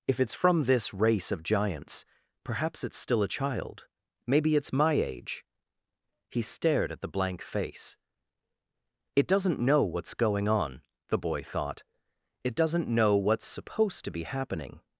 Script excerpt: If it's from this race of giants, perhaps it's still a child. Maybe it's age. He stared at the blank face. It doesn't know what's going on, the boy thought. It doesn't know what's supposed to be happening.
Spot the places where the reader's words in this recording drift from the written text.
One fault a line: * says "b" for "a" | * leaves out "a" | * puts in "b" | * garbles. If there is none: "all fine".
* puts in "my"